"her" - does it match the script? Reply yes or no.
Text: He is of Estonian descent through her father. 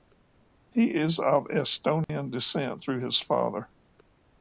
no